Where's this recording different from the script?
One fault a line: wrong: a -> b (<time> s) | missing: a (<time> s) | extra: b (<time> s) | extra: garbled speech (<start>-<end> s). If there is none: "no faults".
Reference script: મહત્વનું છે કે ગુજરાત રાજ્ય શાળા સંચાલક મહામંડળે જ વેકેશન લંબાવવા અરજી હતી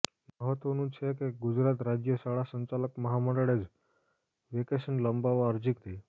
no faults